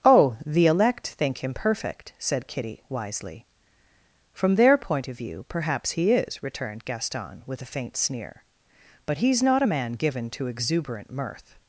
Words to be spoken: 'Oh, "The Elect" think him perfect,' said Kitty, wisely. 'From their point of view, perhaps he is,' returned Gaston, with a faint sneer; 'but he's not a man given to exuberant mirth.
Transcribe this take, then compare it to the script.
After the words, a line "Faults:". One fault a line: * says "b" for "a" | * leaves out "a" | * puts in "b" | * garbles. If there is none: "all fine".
'Oh, "The Elect" think him perfect,' said Kitty, wisely. 'From their point of view, perhaps he is,' returned Gaston, with a faint sneer; 'but he's not a man given to exuberant mirth.
Faults:
all fine